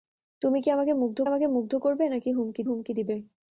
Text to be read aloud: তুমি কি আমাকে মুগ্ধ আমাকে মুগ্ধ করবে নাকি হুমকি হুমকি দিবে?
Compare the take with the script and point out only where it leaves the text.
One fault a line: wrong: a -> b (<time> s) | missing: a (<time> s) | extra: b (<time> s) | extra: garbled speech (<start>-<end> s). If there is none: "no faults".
no faults